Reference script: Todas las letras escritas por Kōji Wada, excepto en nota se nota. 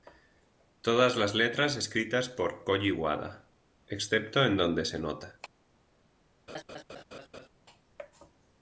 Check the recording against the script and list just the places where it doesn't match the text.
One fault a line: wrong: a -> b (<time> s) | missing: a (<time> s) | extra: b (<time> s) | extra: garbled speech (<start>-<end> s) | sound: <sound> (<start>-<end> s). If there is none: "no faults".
wrong: nota -> donde (4.6 s)
sound: laugh (6.5-7.5 s)